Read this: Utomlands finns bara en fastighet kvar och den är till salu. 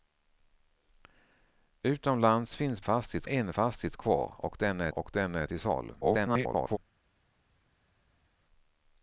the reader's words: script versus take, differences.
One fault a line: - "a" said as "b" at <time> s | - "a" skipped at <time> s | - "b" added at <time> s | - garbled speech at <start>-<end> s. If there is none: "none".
- "bara" said as "fastighet" at 2.8 s
- "och den är" added at 4.9 s
- garbled speech at 6.0-6.8 s